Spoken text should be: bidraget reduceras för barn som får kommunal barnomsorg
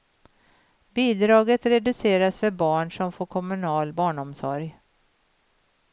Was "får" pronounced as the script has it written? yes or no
yes